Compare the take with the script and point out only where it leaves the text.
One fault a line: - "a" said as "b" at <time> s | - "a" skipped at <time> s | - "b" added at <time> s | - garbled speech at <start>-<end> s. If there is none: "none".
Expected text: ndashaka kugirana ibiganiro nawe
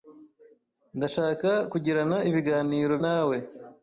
none